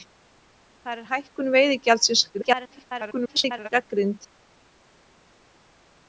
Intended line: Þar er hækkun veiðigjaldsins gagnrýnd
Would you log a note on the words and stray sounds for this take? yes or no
yes